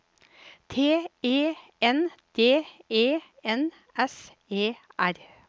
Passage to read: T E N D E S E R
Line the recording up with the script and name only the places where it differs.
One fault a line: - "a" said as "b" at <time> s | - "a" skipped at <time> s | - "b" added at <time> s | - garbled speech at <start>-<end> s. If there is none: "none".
- "N" added at 3.4 s